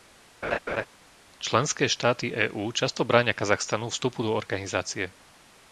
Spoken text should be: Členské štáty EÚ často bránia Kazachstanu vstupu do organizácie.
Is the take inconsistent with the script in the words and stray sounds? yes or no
yes